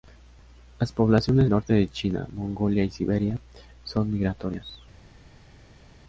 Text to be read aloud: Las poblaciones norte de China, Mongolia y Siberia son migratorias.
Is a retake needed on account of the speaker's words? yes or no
no